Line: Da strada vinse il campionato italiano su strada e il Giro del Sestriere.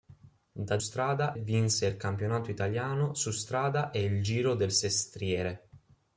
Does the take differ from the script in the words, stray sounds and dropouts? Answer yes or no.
no